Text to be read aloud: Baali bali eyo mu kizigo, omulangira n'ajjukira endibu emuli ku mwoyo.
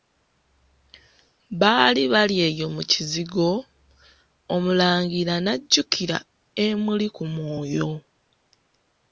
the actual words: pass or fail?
fail